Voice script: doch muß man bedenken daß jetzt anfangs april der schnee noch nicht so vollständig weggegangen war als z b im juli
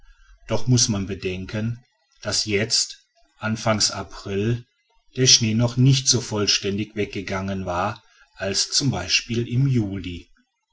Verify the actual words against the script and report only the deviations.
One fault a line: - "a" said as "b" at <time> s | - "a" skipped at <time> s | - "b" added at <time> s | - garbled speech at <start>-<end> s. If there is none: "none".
none